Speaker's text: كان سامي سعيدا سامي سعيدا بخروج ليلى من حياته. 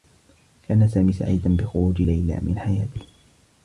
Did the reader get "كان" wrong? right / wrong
right